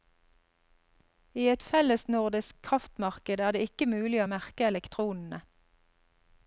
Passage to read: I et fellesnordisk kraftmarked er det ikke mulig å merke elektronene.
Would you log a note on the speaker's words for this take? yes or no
no